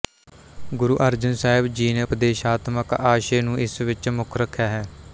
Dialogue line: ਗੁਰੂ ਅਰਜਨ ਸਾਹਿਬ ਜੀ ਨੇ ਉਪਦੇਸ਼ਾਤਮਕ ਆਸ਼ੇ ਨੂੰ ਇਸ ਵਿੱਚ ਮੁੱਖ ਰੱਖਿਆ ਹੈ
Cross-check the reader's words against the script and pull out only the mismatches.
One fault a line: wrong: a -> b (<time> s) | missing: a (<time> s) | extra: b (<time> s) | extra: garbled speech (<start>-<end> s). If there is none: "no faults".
no faults